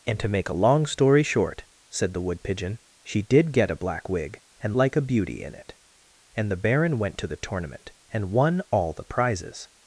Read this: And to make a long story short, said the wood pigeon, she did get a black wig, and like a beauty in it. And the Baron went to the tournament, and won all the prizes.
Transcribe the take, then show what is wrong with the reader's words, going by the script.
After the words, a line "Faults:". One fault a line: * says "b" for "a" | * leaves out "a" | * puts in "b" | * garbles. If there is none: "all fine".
And to make a long story short, said the wood pigeon, she did get a black wig, and like a beauty in it. And the Baron went to the tournament, and won all the prizes.
Faults:
all fine